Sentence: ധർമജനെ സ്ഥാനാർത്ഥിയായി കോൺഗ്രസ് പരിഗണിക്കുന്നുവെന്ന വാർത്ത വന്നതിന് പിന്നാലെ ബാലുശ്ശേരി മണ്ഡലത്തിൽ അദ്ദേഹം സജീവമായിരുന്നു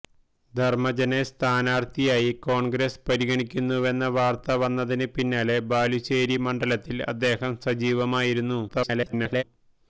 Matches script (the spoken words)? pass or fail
fail